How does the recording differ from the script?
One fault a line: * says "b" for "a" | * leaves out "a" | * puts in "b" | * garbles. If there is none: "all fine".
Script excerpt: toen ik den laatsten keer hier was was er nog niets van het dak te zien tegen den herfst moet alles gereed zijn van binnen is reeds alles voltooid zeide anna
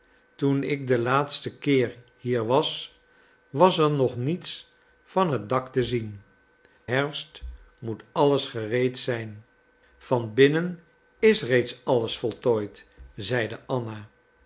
* leaves out "tegen den"